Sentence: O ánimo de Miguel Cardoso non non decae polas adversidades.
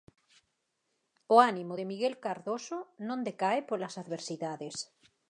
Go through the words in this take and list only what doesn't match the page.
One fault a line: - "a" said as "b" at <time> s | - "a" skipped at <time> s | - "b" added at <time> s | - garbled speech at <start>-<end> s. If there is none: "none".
- "non" skipped at 3.2 s